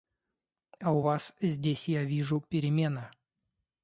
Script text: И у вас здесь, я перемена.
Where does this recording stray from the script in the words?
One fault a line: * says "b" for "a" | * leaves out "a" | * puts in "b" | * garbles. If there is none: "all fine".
* says "А" for "И"
* puts in "вижу"